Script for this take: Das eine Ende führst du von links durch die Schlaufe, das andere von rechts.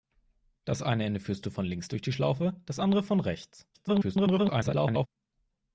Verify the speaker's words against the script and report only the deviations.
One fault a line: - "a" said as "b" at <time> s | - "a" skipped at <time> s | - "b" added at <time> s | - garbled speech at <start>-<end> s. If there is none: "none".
- garbled speech at 3.7-5.1 s